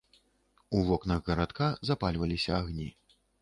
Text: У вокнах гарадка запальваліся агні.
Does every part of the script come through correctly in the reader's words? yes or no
yes